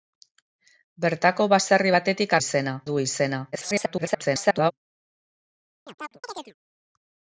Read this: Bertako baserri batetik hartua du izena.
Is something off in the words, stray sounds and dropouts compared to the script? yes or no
yes